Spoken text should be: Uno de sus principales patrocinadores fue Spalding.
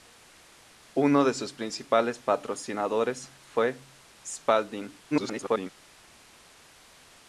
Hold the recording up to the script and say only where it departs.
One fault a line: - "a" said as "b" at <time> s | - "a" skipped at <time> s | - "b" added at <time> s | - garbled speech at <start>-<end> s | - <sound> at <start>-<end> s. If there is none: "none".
- garbled speech at 5.1-5.7 s